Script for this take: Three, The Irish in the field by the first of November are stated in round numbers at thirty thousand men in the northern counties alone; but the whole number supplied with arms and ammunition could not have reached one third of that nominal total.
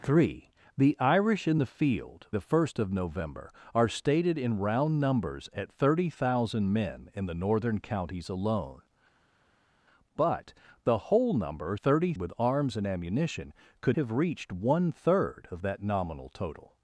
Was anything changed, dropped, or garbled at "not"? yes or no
yes